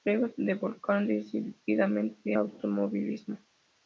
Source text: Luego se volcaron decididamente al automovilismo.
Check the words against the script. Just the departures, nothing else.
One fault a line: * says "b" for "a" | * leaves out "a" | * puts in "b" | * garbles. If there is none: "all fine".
* leaves out "al"